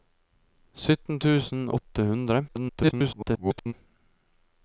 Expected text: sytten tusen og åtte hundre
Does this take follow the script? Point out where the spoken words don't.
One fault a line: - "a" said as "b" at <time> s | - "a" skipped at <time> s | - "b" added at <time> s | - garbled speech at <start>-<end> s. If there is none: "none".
- "og" skipped at 1.6 s
- garbled speech at 2.5-3.7 s